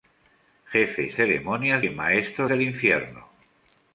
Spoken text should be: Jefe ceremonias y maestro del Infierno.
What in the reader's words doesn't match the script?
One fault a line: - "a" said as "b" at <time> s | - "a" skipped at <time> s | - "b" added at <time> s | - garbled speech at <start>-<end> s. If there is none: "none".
none